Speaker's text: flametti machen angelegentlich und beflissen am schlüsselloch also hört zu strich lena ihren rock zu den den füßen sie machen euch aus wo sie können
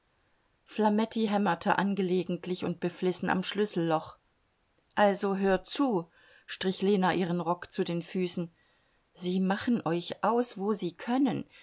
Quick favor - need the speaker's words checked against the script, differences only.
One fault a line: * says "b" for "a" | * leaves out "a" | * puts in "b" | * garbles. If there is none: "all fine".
* says "hämmerte" for "machen"
* leaves out "den"